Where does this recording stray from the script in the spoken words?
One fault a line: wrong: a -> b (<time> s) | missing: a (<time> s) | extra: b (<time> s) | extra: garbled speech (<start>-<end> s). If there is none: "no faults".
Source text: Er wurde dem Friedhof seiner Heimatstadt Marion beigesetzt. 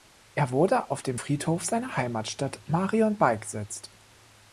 extra: auf (0.9 s)